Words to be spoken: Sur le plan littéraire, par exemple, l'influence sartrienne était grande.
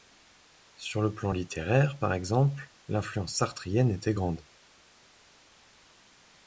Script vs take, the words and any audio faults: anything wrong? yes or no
no